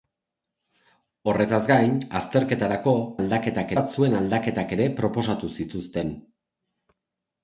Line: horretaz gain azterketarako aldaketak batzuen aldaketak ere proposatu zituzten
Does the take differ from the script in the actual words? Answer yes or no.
no